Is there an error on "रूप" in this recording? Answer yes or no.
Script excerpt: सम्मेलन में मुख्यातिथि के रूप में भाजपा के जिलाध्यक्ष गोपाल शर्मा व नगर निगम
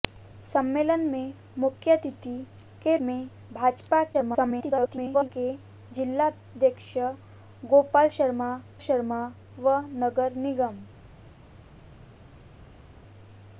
yes